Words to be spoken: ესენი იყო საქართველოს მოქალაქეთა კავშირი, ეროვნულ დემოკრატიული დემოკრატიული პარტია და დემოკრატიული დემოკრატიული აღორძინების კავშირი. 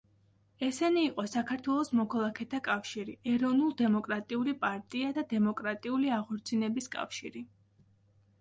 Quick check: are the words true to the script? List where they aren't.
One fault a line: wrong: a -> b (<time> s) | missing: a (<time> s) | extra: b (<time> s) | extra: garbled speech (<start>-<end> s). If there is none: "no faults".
missing: დემოკრატიული (4.6 s)
missing: დემოკრატიული (6.1 s)